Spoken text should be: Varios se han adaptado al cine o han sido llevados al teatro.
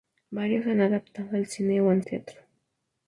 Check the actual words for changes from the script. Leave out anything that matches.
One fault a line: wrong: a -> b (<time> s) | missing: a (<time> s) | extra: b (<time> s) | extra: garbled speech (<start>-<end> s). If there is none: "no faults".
missing: sido llevados al (2.0 s)